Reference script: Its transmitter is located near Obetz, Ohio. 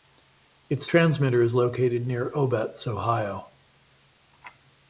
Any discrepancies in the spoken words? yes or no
no